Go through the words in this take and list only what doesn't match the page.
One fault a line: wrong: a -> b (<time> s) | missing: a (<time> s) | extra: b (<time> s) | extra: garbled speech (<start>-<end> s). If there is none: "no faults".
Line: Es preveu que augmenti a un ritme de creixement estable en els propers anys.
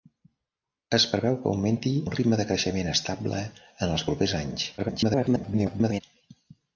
missing: a (1.9 s)
extra: garbled speech (4.8-6.0 s)